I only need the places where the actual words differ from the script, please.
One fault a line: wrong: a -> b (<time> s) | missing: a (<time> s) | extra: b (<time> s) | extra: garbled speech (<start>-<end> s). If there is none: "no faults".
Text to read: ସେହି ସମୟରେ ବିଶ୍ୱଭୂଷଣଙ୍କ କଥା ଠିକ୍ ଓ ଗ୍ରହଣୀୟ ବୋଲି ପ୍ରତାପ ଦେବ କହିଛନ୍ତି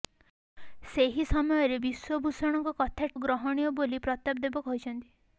missing: ଠିକ୍ (3.1 s)